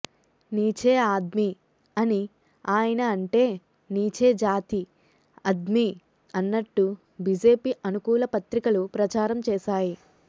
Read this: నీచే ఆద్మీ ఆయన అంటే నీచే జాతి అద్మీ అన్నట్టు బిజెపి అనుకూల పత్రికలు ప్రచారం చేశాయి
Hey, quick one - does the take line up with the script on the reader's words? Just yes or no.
no